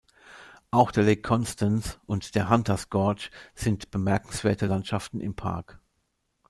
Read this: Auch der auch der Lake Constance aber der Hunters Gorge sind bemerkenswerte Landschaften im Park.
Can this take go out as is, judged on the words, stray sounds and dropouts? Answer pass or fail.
fail